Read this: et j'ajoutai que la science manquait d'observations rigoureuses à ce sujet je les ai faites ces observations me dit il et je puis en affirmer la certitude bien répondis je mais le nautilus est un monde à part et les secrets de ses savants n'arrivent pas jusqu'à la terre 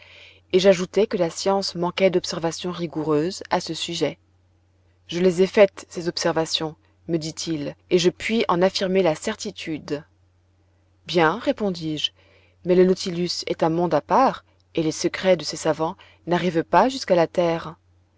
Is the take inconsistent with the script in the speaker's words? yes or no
no